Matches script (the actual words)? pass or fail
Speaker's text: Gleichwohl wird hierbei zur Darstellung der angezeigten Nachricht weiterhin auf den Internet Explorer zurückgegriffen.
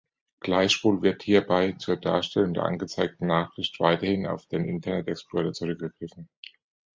pass